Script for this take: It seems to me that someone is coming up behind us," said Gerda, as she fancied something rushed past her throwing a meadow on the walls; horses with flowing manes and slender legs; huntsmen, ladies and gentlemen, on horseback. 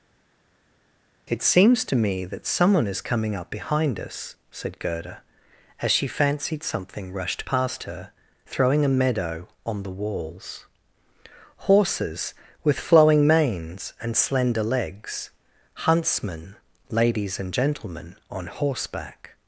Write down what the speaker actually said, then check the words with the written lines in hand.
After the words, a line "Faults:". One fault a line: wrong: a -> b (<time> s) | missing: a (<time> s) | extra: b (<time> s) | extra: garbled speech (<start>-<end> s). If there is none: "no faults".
It seems to me that someone is coming up behind us," said Gerda, as she fancied something rushed past her throwing a meadow on the walls; horses with flowing manes and slender legs; huntsmen, ladies and gentlemen, on horseback.
Faults:
no faults